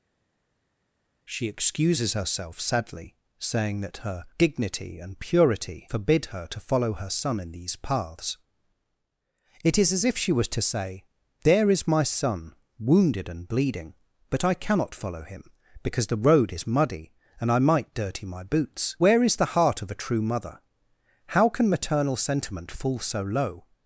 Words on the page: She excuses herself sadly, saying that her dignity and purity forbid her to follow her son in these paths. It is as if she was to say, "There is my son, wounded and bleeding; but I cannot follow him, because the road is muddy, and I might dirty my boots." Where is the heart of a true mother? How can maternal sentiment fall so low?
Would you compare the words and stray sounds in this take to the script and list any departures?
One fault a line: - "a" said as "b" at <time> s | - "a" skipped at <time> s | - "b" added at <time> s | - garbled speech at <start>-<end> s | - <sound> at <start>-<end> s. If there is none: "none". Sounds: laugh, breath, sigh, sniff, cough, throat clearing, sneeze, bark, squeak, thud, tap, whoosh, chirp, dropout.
none